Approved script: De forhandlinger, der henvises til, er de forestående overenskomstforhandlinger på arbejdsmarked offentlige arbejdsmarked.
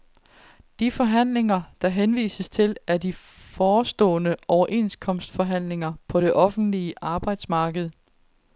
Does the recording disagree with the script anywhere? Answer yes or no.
yes